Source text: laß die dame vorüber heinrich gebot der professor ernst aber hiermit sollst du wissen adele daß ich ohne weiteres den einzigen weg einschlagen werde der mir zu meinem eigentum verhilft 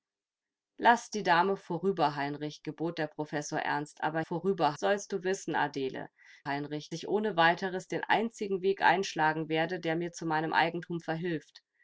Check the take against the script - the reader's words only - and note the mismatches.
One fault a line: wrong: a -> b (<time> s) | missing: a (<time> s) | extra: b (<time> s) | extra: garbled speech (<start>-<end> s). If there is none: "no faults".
wrong: hiermit -> vorüber (4.2 s)
wrong: daß -> heinrich (6.5 s)